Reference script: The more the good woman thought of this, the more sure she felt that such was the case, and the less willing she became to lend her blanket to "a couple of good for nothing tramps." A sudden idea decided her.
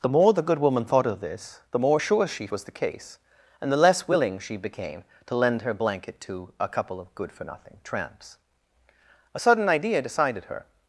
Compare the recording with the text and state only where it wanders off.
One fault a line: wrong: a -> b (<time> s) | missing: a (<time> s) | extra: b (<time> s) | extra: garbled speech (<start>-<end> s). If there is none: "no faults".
missing: felt that such (2.5 s)